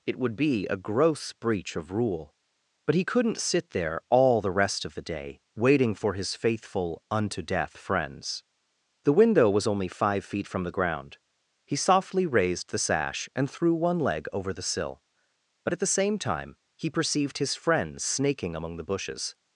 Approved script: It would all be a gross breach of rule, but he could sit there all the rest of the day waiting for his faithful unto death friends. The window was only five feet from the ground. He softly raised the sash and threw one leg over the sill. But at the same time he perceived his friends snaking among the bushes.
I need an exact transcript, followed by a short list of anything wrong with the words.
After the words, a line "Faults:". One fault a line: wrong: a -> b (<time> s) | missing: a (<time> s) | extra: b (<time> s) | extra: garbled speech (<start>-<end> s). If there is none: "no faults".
It would be a gross breach of rule, but he couldn't sit there all the rest of the day waiting for his faithful unto death friends. The window was only five feet from the ground. He softly raised the sash and threw one leg over the sill. But at the same time he perceived his friends snaking among the bushes.
Faults:
missing: all (0.3 s)
wrong: could -> couldn't (3.0 s)